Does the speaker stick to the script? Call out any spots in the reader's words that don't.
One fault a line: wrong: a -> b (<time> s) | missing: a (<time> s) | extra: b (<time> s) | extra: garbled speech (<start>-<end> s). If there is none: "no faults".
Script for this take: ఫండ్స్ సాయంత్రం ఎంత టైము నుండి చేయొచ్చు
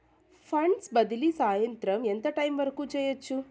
extra: బదిలీ (0.9 s)
wrong: నుండి -> వరకు (2.6 s)